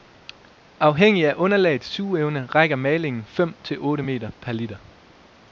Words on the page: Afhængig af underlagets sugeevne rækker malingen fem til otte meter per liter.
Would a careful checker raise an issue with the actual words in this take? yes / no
no